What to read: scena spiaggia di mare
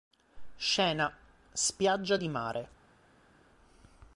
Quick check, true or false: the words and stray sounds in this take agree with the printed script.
true